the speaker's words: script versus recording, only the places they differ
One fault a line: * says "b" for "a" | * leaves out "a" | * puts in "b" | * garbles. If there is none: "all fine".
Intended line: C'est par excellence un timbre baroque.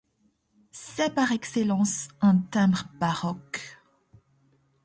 all fine